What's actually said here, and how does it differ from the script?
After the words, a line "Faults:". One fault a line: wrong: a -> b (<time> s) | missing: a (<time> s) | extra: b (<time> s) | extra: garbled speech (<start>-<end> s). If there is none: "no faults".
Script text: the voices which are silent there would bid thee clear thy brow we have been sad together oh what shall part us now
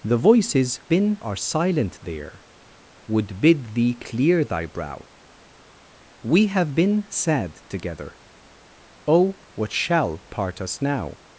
the voices been are silent there would bid thee clear thy brow we have been sad together oh what shall part us now
Faults:
wrong: which -> been (0.9 s)